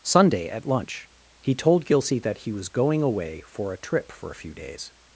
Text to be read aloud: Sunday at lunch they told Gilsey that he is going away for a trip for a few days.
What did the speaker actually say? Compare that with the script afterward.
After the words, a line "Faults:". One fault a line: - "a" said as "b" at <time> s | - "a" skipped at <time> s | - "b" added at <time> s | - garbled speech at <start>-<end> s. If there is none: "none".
Sunday at lunch he told Gilsey that he was going away for a trip for a few days.
Faults:
- "they" said as "he" at 1.4 s
- "is" said as "was" at 2.5 s